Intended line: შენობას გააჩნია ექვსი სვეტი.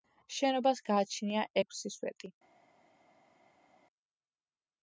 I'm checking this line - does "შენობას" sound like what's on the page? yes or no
yes